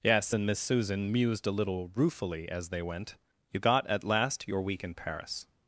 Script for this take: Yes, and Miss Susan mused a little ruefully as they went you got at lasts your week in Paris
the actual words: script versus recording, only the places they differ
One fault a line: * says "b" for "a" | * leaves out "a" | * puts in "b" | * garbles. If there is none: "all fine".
* says "last" for "lasts"